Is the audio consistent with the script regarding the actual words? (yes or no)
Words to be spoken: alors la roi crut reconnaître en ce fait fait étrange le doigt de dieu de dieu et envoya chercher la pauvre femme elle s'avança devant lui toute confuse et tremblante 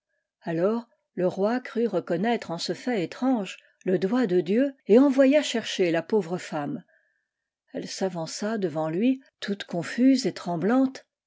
no